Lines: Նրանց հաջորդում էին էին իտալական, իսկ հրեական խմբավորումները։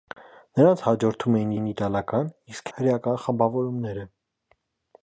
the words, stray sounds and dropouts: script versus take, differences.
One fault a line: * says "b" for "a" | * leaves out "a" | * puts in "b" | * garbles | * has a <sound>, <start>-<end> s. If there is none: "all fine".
all fine